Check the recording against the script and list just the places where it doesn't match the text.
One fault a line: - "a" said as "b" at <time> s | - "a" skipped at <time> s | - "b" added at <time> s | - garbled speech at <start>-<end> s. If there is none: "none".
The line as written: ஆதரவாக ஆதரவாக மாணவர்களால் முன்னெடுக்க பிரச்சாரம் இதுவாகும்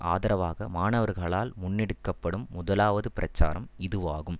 - "ஆதரவாக" skipped at 0.7 s
- "படும் முதலாவது" added at 2.2 s